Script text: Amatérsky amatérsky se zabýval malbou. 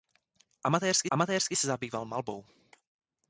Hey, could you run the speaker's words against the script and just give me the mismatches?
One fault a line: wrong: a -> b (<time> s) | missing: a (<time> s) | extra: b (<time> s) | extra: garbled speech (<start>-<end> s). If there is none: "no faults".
no faults